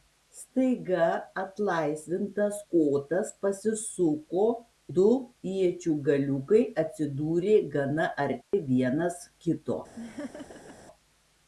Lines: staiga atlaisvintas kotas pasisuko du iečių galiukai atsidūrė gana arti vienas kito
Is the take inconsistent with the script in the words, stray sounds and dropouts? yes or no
yes